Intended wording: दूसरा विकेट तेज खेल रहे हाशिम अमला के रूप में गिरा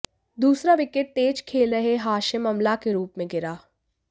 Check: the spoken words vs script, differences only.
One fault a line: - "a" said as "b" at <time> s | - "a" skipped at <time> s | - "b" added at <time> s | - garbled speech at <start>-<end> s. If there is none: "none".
none